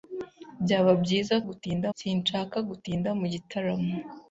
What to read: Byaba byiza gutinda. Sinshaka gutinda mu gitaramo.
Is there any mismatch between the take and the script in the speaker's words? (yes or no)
no